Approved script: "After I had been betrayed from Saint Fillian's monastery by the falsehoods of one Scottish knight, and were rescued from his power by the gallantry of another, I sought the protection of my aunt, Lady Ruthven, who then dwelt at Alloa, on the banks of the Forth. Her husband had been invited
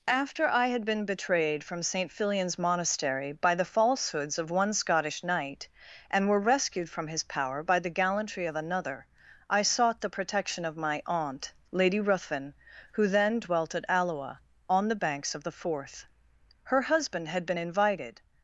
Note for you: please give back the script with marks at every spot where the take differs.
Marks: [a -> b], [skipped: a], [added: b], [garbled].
"After I had been betrayed from Saint Fillian's monastery by the falsehoods of one Scottish knight, and were rescued from his power by the gallantry of another, I sought the protection of my aunt, Lady Ruthven, who then dwelt at Alloa, on the banks of the Forth. Her husband had been invited